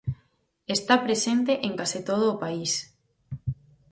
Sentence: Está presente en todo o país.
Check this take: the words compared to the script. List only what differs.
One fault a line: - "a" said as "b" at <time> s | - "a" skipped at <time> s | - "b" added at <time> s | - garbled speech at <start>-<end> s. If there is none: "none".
- "case" added at 1.8 s